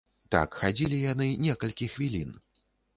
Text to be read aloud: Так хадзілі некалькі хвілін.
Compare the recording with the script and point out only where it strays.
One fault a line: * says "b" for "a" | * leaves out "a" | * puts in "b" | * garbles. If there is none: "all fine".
* puts in "яны"